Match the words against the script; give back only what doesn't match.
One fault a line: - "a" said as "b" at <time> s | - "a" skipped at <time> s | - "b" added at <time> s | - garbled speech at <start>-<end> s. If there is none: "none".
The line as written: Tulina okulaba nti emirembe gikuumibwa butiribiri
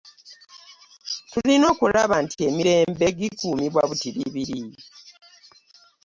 none